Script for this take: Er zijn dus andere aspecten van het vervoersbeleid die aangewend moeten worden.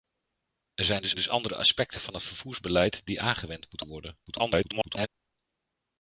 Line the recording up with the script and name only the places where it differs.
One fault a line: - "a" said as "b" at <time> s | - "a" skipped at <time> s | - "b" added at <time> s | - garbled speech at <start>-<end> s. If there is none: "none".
- "dus" added at 1.1 s
- garbled speech at 4.3-5.1 s